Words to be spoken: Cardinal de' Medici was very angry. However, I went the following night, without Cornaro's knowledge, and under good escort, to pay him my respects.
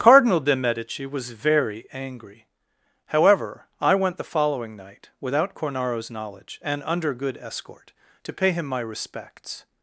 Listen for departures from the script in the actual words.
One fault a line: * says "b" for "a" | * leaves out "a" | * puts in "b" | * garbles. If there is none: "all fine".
all fine